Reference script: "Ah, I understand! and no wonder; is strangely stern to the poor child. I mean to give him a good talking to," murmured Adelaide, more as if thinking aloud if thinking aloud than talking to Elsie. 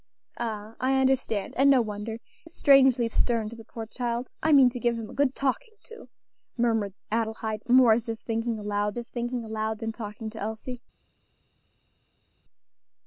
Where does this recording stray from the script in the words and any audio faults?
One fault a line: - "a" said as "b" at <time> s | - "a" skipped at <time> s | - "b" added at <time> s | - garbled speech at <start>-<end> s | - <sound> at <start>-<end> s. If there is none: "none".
none